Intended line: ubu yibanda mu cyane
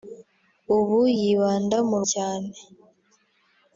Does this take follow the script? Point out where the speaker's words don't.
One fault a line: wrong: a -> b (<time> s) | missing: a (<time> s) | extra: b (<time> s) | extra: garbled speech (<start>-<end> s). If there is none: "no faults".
no faults